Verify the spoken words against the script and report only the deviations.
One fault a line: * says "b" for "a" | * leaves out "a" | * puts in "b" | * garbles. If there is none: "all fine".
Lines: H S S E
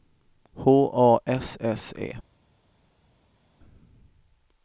* puts in "A"